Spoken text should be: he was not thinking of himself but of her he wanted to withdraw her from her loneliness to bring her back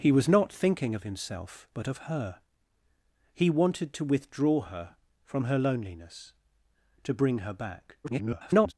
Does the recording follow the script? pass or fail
fail